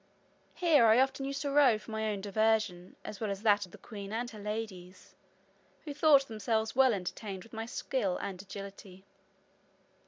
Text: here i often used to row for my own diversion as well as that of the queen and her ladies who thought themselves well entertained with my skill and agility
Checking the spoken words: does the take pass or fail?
pass